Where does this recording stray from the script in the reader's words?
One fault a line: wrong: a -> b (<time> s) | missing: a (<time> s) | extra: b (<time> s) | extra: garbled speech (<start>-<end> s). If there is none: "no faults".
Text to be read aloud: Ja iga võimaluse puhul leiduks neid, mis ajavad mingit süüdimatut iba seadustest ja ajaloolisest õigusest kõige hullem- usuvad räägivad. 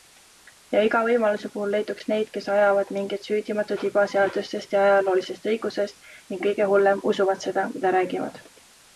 wrong: mis -> kes (2.4 s)
extra: ning (6.1 s)
extra: seda mida (7.5 s)